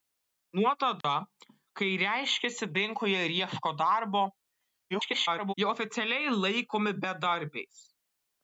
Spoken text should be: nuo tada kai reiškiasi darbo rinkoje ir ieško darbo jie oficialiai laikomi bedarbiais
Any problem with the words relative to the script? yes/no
yes